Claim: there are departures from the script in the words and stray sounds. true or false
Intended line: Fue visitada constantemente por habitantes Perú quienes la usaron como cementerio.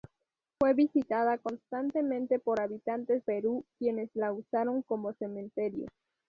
false